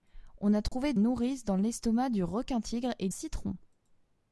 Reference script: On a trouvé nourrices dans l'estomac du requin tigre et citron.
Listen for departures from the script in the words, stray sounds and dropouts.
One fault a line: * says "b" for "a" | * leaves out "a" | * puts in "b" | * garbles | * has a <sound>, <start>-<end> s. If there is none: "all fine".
* has a dropout, 0.7-0.7 s